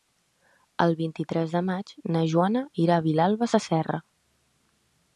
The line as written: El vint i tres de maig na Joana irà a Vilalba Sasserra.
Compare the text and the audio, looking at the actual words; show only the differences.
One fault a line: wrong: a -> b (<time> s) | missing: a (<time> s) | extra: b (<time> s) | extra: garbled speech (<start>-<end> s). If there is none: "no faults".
no faults